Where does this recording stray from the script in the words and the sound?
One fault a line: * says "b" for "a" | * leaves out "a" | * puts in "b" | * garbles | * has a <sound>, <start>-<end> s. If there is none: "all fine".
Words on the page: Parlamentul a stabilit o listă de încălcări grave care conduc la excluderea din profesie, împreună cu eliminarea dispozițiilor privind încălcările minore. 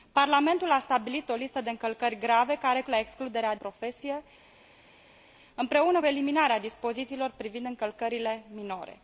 * leaves out "conduc"
* leaves out "din"
* leaves out "cu"